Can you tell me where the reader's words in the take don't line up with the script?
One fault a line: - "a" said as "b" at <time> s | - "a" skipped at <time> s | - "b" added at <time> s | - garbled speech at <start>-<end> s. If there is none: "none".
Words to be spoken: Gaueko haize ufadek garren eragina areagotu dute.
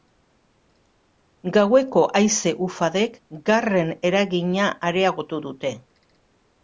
none